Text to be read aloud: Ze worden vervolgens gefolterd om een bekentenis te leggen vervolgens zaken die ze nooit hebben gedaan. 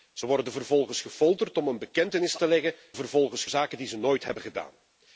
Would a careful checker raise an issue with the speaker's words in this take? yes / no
no